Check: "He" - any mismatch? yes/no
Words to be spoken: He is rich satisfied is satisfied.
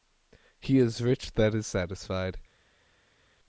no